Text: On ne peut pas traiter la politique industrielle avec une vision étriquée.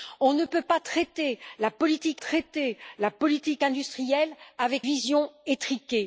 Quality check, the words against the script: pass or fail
fail